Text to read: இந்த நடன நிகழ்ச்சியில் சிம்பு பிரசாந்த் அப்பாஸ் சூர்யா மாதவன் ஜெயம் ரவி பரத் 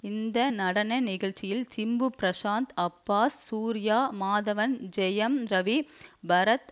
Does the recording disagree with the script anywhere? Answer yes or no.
no